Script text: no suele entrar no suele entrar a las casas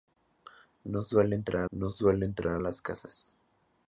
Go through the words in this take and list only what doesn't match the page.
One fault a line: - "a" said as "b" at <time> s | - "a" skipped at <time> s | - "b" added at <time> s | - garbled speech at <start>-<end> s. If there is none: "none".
none